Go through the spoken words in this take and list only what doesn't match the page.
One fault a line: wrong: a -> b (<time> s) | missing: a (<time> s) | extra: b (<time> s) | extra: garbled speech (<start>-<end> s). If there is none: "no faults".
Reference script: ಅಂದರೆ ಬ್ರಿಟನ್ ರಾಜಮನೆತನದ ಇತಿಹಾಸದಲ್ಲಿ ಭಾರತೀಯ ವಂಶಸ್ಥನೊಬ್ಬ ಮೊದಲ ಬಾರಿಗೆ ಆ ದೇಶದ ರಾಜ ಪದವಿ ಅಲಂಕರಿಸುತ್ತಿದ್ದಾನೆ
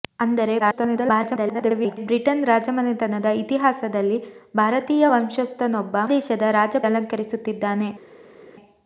extra: garbled speech (0.6-2.0 s)
missing: ಮೊದಲ ಬಾರಿಗೆ ಆ (6.0 s)
missing: ಪದವಿ (6.8 s)